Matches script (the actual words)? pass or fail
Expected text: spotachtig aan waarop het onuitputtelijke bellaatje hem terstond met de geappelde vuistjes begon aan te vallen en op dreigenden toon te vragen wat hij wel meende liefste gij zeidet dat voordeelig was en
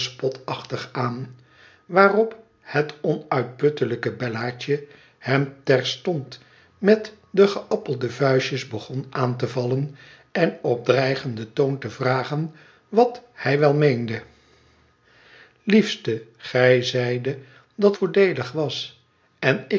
pass